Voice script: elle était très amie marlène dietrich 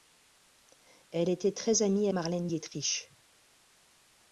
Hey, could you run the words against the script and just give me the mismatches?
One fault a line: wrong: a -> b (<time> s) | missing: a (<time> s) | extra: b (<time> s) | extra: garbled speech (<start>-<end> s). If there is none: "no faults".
no faults